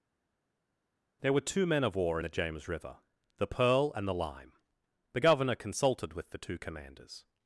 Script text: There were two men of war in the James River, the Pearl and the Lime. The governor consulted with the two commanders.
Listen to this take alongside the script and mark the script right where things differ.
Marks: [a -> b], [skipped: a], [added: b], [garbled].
There were two men of war [skipped: in] the James River, the Pearl and the Lime. The governor consulted with the two commanders.